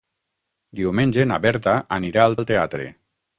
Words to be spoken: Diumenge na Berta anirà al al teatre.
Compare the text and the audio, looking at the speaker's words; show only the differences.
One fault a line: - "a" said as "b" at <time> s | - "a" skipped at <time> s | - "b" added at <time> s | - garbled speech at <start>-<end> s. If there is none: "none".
none